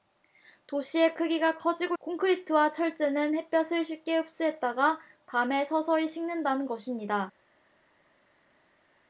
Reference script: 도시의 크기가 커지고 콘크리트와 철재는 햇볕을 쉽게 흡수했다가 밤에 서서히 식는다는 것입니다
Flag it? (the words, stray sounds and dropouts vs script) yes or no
no